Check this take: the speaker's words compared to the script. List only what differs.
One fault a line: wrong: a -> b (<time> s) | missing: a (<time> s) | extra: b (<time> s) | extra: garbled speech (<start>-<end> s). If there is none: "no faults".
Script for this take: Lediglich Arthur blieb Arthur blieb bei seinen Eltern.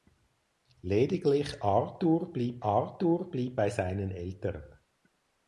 no faults